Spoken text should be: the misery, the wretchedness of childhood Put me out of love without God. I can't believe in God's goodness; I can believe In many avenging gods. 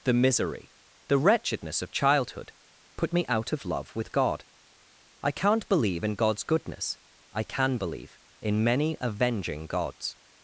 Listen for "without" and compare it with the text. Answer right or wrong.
wrong